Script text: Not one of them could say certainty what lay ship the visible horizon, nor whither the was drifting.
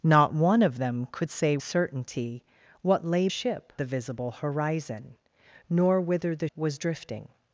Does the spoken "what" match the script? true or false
true